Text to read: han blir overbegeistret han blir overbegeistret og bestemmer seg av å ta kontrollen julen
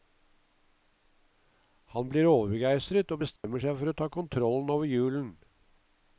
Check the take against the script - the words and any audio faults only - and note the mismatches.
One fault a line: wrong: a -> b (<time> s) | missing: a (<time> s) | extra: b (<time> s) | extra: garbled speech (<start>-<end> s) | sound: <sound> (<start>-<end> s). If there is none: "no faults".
missing: han blir overbegeistret (3.1 s)
sound: dropout (3.4-3.4 s)
wrong: av -> for (3.8 s)
extra: over (4.7 s)